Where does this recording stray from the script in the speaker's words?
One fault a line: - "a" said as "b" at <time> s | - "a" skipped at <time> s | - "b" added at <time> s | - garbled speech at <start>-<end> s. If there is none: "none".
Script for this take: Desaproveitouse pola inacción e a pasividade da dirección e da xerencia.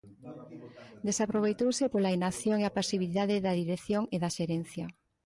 none